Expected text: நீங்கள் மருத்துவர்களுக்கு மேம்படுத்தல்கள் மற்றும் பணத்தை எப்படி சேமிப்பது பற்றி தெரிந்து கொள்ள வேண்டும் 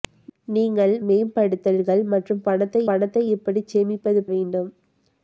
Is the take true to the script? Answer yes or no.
no